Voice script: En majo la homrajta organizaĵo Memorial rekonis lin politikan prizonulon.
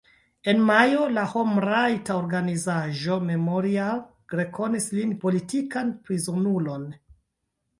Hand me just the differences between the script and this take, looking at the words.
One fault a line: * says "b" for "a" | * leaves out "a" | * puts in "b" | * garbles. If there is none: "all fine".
all fine